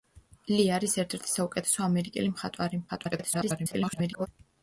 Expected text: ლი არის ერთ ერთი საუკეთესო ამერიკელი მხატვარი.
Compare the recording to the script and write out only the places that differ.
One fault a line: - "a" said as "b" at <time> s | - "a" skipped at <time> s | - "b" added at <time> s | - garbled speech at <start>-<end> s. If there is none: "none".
- garbled speech at 2.9-4.3 s